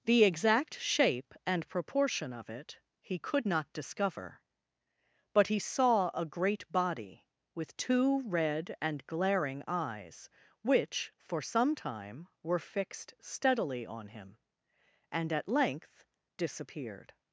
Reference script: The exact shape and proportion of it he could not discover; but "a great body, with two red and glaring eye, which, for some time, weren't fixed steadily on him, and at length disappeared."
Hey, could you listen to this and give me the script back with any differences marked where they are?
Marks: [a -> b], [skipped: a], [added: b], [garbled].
The exact shape and proportion of it he could not discover; but [added: he saw] "a great body, with two red and glaring [eye, -> eyes] which, for some time, [weren't -> were] fixed steadily on him, and at length disappeared."